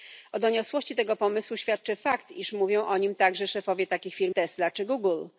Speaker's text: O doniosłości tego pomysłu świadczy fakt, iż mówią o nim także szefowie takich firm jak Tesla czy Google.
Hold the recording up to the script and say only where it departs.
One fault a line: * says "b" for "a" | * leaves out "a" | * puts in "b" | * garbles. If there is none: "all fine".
* leaves out "jak"